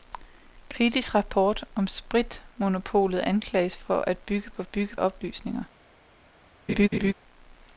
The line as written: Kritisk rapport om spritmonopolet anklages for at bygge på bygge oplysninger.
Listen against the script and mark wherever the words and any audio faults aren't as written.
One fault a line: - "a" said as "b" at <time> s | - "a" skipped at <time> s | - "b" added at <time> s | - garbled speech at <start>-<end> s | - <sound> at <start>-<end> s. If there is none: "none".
- laugh at 6.7-7.1 s